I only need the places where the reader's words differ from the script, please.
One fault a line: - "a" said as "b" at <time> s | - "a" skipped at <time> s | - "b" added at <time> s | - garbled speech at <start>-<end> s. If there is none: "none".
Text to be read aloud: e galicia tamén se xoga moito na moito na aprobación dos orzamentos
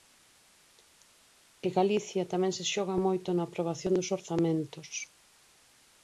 - "moito na" skipped at 3.4 s